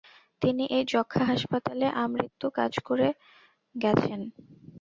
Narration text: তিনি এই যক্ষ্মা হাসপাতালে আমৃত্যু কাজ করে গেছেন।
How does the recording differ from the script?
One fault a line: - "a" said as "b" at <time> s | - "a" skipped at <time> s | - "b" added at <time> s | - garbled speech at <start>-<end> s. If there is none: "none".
none